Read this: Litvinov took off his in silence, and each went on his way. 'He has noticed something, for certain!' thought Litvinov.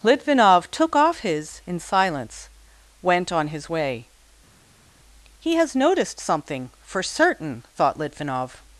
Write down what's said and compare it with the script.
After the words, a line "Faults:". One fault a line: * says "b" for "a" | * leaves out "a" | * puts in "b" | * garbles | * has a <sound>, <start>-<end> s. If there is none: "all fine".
Litvinov took off his in silence, went on his way. 'He has noticed something, for certain!' thought Litvinov.
Faults:
* leaves out "and each"